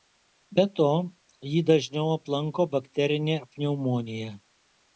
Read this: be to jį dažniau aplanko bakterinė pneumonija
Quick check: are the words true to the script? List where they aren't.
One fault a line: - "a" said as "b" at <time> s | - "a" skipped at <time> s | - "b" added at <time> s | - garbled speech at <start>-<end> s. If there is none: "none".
none